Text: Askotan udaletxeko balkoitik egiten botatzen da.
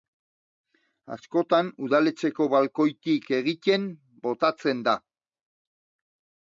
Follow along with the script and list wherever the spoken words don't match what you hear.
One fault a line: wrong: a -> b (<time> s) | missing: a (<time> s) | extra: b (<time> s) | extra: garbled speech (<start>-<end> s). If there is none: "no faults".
no faults